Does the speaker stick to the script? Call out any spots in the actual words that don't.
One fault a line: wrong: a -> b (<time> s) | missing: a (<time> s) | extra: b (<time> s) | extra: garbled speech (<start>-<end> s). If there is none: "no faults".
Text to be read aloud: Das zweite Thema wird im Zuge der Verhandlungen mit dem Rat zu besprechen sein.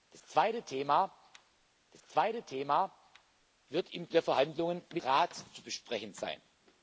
extra: das zweite Thema (1.9 s)
missing: Zuge (4.1 s)
missing: dem (5.0 s)